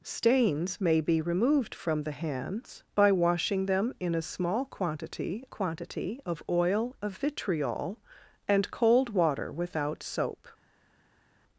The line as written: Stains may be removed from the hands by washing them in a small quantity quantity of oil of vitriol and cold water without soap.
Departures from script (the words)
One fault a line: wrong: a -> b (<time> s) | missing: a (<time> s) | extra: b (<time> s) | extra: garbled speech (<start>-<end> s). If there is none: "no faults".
no faults